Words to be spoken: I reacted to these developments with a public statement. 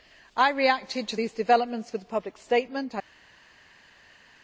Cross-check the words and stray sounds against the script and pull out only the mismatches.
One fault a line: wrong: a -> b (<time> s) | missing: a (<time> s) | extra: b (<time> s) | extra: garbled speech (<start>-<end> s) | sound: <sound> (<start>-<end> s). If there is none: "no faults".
no faults